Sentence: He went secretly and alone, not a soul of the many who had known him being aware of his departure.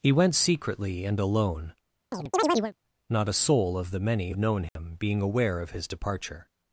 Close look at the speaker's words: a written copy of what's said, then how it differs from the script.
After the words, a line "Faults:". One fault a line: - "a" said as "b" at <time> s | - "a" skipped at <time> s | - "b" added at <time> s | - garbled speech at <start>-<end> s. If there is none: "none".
He went secretly and alone, not a soul of the many known him being aware of his departure.
Faults:
- "who had" skipped at 4.3 s